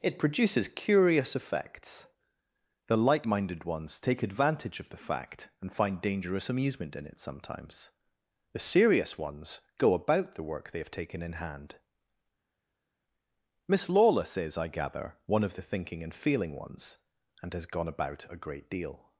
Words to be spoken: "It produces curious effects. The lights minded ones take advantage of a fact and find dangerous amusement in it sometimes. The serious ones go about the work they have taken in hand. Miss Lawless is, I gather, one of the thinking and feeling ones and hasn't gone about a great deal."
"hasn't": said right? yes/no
no